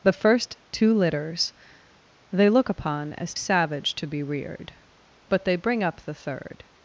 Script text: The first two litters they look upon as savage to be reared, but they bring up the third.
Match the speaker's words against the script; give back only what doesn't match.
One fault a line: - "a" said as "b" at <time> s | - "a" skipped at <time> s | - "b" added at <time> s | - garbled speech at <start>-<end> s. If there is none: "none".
none